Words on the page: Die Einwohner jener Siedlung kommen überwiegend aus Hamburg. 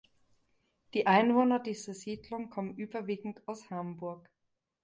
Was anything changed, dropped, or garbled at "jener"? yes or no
yes